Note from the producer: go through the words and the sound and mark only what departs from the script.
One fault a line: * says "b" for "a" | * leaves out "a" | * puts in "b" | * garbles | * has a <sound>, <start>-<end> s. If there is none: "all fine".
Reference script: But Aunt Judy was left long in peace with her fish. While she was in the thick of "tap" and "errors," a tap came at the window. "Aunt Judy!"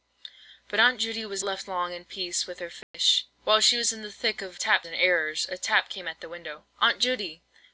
* has a dropout, 2.8-2.9 s